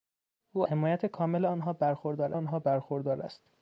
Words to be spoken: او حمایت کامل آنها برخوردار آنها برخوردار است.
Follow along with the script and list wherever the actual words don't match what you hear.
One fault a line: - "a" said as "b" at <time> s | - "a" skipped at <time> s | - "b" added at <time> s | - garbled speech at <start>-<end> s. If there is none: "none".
none